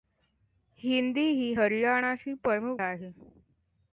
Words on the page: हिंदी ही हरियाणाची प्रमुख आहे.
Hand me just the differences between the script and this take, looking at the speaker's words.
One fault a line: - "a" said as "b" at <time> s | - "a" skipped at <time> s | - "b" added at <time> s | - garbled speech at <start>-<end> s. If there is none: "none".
none